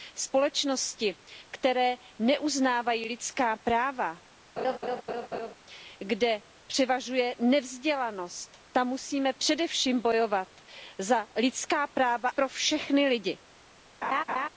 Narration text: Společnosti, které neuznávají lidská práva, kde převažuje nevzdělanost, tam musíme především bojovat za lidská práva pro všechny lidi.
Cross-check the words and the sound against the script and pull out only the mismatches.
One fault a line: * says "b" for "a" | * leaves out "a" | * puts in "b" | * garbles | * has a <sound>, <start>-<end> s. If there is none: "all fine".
* has a laugh, 4.6-5.5 s
* has a laugh, 14.0-14.5 s